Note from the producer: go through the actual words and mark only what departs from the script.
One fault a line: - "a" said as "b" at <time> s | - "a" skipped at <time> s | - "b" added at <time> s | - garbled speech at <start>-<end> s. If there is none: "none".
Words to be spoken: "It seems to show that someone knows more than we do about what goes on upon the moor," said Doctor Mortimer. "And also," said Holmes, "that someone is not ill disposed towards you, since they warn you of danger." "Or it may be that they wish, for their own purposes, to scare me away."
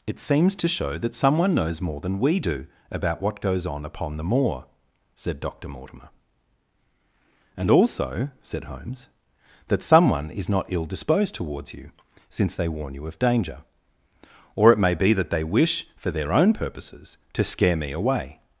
none